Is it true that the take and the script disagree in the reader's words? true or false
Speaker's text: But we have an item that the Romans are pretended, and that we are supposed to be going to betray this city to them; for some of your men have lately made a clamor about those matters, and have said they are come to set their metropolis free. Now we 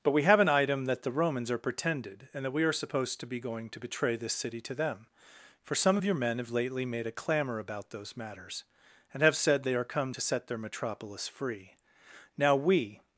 false